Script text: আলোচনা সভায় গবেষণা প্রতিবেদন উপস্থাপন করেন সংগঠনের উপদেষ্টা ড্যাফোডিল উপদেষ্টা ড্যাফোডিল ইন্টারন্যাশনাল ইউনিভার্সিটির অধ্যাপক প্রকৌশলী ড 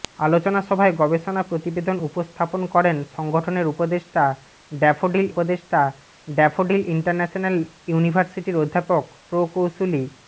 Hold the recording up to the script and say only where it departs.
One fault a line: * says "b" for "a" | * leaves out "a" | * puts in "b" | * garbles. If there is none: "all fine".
all fine